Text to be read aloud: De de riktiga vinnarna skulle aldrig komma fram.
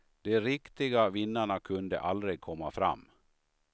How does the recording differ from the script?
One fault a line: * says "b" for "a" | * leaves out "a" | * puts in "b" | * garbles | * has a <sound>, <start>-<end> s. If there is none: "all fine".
* leaves out "de"
* says "kunde" for "skulle"